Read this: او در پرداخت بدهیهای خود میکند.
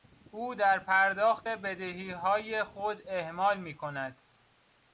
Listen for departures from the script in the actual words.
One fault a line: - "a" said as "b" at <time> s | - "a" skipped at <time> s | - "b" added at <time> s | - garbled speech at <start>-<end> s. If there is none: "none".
- "اهمال" added at 3.1 s